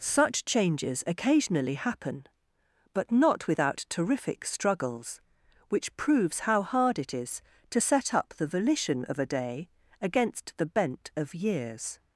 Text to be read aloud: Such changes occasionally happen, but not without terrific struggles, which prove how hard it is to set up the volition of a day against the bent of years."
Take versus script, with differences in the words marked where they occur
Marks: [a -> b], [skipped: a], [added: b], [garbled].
Such changes occasionally happen, but not without terrific struggles, which [prove -> proves] how hard it is to set up the volition of a day against the bent of years."